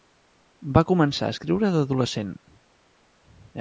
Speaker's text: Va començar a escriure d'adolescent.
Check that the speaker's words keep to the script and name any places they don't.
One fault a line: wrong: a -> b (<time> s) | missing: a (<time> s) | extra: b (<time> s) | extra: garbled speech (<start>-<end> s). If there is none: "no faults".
no faults